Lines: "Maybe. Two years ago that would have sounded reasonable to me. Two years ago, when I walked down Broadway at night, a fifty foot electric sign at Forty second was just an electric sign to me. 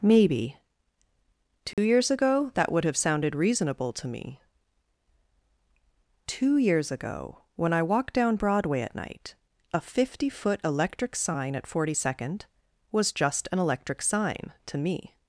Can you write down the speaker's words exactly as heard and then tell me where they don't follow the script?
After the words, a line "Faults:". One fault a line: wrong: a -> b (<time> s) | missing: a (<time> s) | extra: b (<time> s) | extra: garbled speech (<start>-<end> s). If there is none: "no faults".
"Maybe. Two years ago that would have sounded reasonable to me. Two years ago, when I walked down Broadway at night, a fifty foot electric sign at Forty second was just an electric sign to me.
Faults:
no faults